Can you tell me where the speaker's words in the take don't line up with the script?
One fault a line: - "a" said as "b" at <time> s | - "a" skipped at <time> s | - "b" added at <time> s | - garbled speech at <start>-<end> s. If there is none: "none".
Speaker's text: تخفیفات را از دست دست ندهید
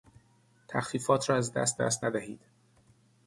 none